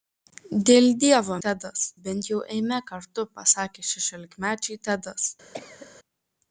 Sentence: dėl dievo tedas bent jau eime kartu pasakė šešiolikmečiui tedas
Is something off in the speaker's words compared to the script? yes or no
no